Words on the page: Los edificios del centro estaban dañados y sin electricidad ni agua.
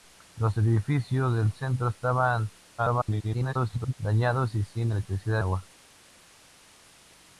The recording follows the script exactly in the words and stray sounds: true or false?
false